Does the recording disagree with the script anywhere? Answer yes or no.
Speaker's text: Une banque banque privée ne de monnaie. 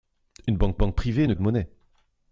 no